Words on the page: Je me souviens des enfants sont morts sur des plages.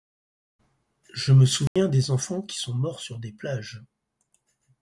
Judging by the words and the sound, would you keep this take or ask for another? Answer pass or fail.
fail